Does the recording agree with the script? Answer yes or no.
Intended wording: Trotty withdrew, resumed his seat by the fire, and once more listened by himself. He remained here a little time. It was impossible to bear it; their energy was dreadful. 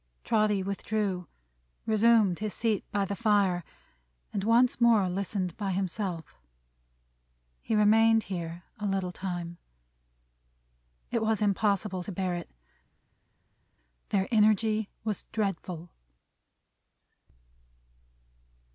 yes